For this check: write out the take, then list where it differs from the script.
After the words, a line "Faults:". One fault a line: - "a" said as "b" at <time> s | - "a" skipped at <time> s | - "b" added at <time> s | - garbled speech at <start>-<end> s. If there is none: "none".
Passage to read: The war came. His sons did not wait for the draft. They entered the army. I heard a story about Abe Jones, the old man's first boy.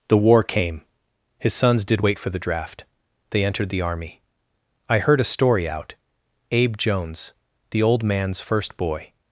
The war came. His sons did wait for the draft. They entered the army. I heard a story out Abe Jones, the old man's first boy.
Faults:
- "not" skipped at 2.0 s
- "about" said as "out" at 5.7 s